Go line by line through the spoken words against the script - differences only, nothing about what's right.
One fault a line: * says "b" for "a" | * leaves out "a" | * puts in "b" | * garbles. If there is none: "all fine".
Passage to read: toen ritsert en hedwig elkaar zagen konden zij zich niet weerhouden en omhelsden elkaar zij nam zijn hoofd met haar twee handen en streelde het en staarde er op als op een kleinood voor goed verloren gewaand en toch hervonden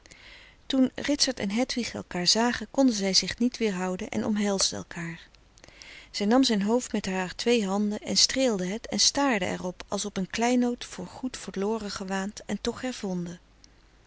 all fine